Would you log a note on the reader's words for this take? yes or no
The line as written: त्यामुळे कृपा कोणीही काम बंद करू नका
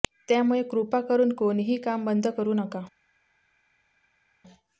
yes